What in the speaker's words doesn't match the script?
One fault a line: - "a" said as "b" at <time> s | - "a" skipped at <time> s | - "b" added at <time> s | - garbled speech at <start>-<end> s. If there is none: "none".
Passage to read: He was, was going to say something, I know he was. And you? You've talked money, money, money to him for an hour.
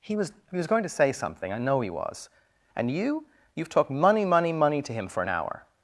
- "he" added at 0.5 s